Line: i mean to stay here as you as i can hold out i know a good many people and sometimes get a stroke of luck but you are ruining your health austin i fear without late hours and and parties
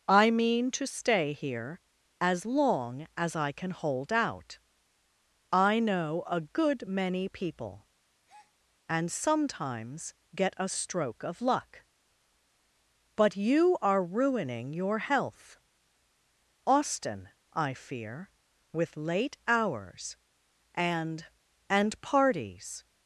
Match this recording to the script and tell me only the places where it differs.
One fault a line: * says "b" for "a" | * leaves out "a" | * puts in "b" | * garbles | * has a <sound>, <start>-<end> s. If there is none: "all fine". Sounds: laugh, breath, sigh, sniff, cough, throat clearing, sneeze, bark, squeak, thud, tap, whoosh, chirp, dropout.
* says "long" for "you"
* has a breath, 8.3-8.5 s
* says "with" for "without"